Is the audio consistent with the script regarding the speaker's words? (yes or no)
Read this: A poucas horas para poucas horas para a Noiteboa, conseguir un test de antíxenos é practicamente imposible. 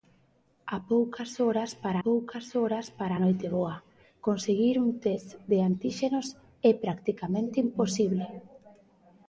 yes